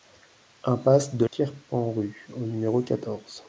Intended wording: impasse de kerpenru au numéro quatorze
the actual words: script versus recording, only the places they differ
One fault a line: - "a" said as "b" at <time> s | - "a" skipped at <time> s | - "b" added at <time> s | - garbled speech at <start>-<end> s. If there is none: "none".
none